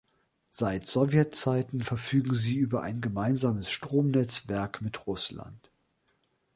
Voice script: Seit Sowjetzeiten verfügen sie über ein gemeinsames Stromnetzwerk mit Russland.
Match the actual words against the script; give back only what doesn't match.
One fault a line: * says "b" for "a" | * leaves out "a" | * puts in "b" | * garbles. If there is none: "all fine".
all fine